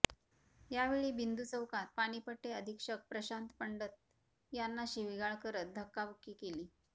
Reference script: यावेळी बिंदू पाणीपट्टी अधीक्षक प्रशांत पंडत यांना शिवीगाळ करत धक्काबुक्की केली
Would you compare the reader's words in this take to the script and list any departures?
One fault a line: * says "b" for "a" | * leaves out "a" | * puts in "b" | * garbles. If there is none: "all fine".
* puts in "चौकात"